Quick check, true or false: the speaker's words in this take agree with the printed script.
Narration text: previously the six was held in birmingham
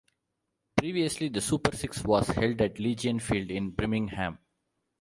false